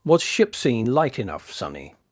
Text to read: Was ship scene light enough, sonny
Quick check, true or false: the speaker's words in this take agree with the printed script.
true